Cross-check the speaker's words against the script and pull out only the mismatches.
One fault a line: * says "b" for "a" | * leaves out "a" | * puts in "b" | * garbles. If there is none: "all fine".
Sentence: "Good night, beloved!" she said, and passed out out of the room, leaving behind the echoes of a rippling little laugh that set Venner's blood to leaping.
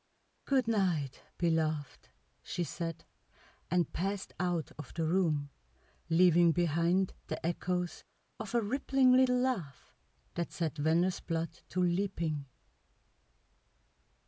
* leaves out "out"